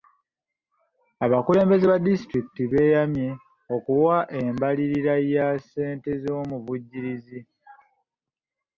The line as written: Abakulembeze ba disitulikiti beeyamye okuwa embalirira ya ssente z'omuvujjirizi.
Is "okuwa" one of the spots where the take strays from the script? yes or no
no